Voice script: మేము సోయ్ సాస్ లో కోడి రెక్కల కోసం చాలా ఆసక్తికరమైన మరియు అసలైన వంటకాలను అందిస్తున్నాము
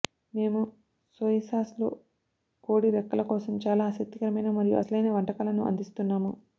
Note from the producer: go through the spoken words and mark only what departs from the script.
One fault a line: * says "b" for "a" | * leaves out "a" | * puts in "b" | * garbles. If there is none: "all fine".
all fine